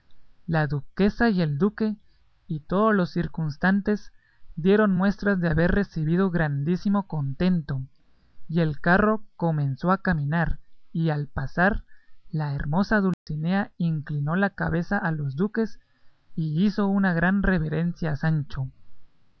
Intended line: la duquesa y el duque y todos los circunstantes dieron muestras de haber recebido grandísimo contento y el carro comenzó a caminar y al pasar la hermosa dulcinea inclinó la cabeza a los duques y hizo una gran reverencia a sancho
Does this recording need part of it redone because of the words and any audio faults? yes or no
yes